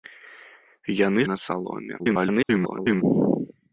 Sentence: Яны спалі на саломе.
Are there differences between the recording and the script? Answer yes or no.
yes